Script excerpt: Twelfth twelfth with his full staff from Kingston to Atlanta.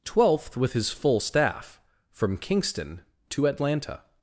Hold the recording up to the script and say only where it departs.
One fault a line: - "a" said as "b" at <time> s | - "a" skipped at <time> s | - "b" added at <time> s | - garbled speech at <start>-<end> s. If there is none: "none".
- "twelfth" skipped at 0.6 s